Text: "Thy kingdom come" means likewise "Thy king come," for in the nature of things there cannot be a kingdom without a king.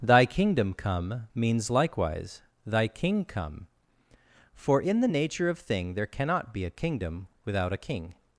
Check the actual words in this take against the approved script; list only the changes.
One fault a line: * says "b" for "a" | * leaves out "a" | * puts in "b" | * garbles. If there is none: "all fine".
* says "thing" for "things"